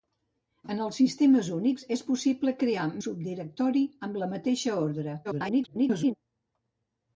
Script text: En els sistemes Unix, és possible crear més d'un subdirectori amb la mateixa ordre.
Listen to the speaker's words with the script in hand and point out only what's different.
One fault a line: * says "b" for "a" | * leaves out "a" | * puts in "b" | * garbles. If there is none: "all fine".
* leaves out "més d'un"
* garbles